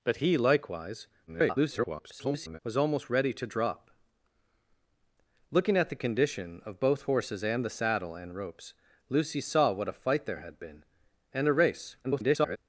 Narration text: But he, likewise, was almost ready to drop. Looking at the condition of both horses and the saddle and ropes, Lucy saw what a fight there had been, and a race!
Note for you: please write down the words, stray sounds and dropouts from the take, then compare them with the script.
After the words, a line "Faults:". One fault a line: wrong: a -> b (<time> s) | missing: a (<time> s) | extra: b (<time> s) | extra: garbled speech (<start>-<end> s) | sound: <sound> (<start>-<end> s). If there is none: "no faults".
But he, likewise, [garbled] was almost ready to drop. Looking at the condition of both horses and the saddle and ropes, Lucy saw what a fight there had been, and a race! [garbled]
Faults:
extra: garbled speech (1.3-2.6 s)
extra: garbled speech (12.0-12.6 s)